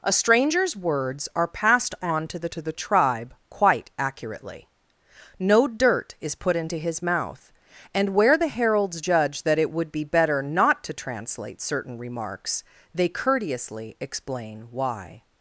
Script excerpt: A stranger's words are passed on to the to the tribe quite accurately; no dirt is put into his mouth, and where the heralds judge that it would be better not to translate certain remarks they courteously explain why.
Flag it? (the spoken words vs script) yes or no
no